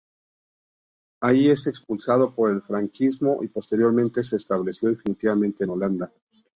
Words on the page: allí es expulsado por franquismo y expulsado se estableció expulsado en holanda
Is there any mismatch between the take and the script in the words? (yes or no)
yes